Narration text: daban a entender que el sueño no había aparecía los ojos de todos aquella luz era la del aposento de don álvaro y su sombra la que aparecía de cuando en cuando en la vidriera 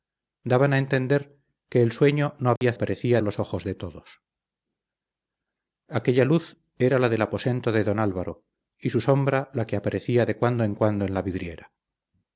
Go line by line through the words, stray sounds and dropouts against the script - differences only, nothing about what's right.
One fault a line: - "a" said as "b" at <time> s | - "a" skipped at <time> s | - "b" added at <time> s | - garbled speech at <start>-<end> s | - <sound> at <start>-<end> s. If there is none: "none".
- dropout at 2.6-2.6 s